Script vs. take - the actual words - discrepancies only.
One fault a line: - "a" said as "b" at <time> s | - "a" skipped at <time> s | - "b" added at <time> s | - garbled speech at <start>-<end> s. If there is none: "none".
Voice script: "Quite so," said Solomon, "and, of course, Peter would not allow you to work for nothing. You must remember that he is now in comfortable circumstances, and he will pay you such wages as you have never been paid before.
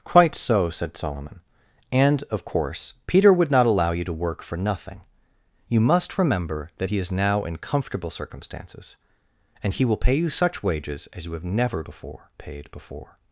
- "been" said as "before" at 11.8 s